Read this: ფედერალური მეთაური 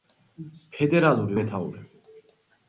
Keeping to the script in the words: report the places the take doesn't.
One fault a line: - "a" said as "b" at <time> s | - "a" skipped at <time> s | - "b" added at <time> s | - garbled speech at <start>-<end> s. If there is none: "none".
none